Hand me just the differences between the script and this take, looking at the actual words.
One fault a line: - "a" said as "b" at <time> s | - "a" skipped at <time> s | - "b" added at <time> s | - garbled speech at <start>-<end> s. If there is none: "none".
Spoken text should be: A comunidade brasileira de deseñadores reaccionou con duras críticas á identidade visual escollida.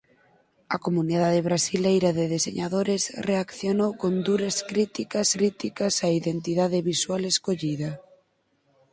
- "críticas" added at 5.3 s